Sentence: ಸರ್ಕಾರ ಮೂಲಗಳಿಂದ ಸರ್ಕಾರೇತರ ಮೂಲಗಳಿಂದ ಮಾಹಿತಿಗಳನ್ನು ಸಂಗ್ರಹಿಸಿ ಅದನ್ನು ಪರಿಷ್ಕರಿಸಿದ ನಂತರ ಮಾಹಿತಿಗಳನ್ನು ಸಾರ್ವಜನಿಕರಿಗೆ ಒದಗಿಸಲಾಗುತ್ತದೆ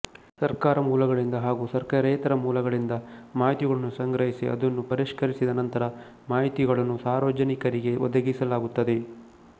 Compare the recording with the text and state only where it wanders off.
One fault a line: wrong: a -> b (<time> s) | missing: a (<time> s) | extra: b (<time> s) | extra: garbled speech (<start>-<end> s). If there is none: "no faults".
extra: ಹಾಗೂ (1.4 s)